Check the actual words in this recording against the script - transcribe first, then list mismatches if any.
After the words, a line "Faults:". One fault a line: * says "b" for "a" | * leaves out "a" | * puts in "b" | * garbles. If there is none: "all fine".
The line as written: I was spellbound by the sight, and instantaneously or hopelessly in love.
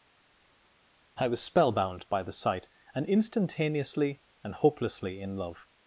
I was spellbound by the sight, and instantaneously and hopelessly in love.
Faults:
* says "and" for "or"